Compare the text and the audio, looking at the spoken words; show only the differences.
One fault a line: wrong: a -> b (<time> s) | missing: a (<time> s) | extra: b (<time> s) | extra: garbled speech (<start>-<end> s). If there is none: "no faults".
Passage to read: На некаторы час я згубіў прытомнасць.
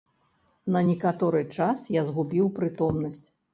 no faults